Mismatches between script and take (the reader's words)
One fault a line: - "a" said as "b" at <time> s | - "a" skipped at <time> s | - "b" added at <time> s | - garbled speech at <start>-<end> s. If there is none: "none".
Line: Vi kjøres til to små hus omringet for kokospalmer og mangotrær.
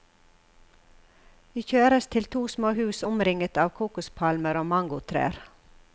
- "for" said as "av" at 3.6 s